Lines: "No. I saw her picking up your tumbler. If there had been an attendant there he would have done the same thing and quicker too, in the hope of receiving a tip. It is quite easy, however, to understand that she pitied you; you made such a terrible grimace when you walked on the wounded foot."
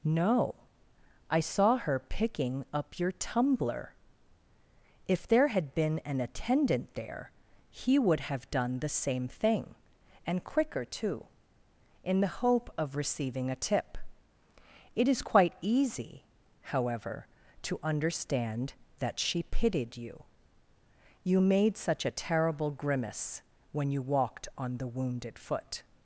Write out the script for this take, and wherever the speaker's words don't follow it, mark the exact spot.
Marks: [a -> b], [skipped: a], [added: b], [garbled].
"No. I saw her picking up your tumbler. If there had been an attendant there he would have done the same thing and quicker too, in the hope of receiving a tip. It is quite easy, however, to understand that she pitied you; you made such a terrible grimace when you walked on the wounded foot."